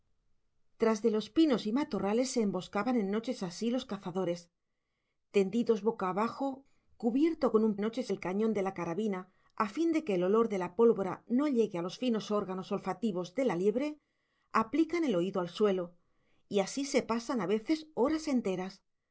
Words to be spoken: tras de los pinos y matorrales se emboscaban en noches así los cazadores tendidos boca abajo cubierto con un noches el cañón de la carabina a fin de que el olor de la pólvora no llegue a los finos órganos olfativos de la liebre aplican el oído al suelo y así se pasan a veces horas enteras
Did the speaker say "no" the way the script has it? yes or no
yes